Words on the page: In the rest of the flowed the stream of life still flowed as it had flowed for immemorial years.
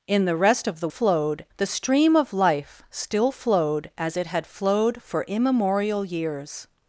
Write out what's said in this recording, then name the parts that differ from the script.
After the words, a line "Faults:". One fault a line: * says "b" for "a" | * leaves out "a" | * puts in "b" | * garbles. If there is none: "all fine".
In the rest of the flowed the stream of life still flowed as it had flowed for immemorial years.
Faults:
all fine